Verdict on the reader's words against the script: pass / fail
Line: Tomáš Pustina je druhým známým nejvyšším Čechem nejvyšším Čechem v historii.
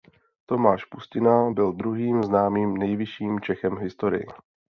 fail